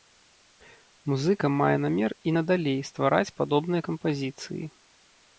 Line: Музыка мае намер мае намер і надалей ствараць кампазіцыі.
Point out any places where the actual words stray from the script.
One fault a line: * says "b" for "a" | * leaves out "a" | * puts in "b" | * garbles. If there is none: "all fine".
* leaves out "мае намер"
* puts in "падобныя"